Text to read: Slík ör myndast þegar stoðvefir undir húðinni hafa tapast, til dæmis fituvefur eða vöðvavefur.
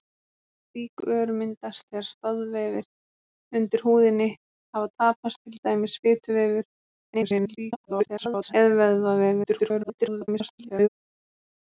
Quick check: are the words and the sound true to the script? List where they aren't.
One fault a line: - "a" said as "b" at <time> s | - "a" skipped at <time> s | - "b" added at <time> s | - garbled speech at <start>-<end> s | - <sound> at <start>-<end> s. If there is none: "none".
- garbled speech at 7.1-8.5 s
- garbled speech at 9.4-10.9 s